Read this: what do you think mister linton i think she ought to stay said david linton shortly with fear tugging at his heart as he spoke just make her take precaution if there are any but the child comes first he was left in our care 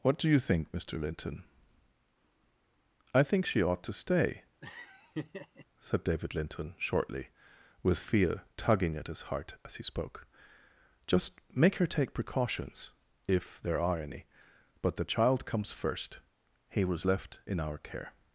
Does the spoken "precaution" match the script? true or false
false